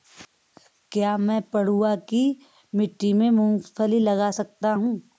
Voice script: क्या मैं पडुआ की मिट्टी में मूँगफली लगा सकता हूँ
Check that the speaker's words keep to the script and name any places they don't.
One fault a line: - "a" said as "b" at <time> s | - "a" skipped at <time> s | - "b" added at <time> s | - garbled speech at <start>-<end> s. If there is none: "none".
none